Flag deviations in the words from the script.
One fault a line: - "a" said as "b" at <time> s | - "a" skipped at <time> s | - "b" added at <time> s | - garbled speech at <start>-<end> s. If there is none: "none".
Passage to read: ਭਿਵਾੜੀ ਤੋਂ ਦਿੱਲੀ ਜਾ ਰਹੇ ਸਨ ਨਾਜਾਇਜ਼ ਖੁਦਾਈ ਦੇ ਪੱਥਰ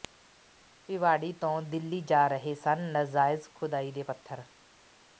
none